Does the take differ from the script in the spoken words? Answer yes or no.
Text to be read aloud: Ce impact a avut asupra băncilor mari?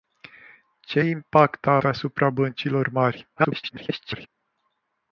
yes